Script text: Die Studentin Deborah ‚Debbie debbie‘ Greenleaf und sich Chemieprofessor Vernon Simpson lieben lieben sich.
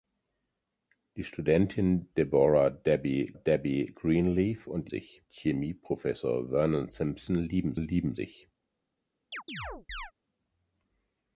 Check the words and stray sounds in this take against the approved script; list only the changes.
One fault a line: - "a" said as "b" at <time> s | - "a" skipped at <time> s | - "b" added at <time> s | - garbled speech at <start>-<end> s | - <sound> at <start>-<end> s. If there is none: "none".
- chirp at 9.3-10.1 s